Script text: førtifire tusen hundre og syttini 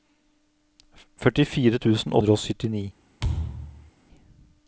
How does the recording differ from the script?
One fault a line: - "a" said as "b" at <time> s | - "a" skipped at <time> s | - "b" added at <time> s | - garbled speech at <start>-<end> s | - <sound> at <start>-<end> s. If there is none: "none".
- thud at 3.2-3.9 s